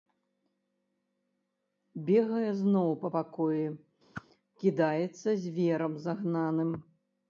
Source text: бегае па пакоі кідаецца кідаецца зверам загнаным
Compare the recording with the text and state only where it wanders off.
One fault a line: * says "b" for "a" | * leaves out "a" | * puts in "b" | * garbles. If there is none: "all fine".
* puts in "зноў"
* leaves out "кідаецца"